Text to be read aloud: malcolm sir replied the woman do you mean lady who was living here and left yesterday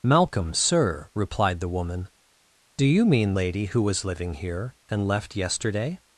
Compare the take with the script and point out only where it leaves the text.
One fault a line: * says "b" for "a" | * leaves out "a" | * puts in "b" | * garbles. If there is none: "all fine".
all fine